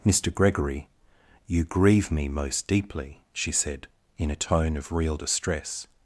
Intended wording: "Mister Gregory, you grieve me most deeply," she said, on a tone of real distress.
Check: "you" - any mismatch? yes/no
no